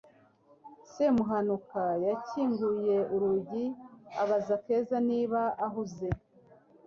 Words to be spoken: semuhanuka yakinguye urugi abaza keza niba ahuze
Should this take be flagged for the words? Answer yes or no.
no